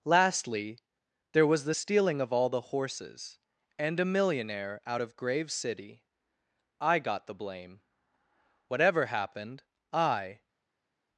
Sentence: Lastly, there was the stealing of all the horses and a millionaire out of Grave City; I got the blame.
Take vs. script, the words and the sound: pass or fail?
fail